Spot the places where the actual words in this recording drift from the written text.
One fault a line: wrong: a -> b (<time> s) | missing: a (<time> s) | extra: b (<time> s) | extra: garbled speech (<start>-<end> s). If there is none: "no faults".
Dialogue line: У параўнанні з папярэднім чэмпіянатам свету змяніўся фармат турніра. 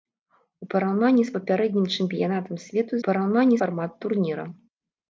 wrong: змяніўся -> параўнанні (3.0 s)